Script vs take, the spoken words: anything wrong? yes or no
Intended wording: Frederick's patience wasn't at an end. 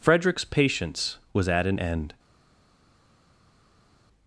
yes